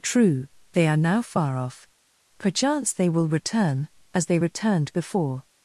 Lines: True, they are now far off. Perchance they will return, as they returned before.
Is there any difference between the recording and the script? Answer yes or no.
no